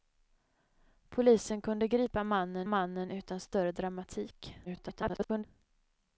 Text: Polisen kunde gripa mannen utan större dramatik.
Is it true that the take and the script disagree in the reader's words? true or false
true